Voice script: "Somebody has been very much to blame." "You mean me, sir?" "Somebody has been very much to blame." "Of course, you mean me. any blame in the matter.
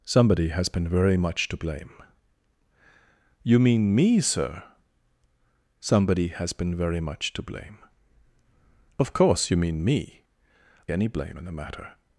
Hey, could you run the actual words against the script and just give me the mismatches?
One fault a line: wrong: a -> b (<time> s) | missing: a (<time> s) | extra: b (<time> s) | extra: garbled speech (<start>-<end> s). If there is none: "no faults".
no faults